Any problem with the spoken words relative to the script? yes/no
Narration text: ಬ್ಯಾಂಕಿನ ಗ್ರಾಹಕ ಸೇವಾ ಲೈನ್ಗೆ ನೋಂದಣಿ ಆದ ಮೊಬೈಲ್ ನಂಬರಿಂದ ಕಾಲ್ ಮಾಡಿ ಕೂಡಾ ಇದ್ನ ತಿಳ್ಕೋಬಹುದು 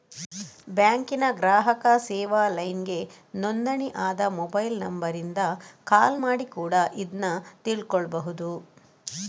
no